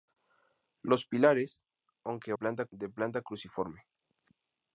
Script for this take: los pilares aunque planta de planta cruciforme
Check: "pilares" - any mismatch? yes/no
no